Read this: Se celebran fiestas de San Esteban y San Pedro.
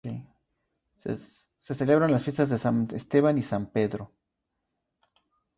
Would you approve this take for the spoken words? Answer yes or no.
no